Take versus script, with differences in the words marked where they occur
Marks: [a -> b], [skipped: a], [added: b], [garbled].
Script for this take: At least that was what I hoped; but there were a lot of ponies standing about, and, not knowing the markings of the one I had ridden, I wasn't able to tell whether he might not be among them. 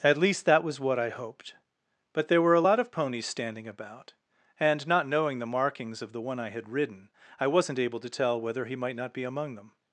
At least that was what I hoped; but there were a lot of ponies standing about, and, not knowing the markings of the one I had ridden, I wasn't able to tell whether he might not be among them.